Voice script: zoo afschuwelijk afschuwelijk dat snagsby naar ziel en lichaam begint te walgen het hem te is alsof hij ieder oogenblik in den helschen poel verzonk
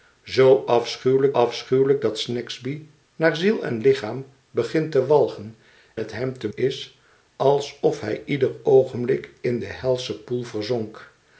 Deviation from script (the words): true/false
false